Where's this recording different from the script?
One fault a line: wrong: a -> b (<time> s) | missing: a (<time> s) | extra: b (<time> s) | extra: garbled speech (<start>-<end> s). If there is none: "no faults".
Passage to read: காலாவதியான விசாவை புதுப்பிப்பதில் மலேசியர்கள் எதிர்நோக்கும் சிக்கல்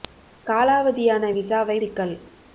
missing: புதுப்பிப்பதில் மலேசியர்கள் எதிர்நோக்கும் (1.8 s)